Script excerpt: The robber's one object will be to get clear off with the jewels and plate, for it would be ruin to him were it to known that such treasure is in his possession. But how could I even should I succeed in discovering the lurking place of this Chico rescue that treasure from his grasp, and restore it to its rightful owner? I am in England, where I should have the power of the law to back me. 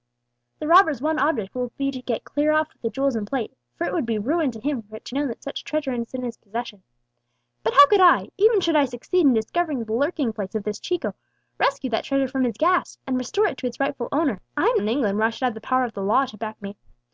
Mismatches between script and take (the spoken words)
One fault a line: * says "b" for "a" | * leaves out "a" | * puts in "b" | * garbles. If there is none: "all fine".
all fine